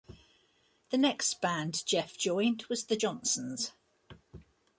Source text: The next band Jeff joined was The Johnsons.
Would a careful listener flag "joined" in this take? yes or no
no